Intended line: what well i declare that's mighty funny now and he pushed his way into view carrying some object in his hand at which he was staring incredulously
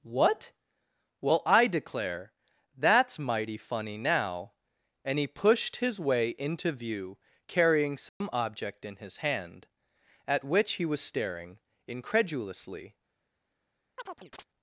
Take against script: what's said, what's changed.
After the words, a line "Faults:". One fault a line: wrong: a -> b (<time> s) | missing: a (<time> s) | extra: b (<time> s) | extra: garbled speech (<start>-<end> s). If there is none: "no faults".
what well i declare that's mighty funny now and he pushed his way into view carrying some object in his hand at which he was staring incredulously
Faults:
no faults